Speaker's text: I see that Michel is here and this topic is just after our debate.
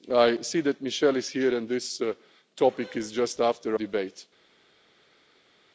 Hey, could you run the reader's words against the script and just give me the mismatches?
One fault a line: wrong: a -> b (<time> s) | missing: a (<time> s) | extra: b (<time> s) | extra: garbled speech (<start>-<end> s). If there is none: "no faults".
missing: our (3.8 s)